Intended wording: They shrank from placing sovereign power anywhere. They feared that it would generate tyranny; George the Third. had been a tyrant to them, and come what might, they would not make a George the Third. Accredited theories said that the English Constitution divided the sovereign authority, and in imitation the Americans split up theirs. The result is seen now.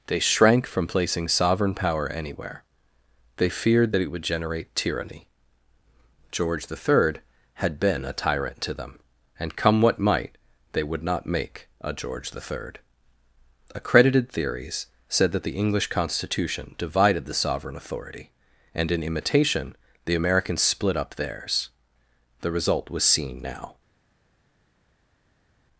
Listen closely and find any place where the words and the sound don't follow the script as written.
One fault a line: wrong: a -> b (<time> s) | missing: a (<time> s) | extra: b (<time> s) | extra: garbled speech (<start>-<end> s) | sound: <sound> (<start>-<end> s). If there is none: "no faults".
wrong: is -> was (22.9 s)